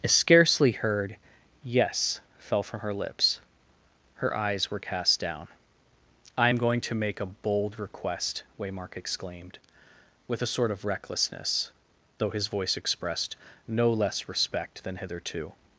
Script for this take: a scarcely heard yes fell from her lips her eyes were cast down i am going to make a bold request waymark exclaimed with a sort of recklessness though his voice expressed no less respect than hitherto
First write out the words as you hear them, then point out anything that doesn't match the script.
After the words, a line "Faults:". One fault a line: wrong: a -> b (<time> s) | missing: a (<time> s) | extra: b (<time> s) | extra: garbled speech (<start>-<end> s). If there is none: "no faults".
a scarcely heard yes fell from her lips her eyes were cast down i am going to make a bold request waymark exclaimed with a sort of recklessness though his voice expressed no less respect than hitherto
Faults:
no faults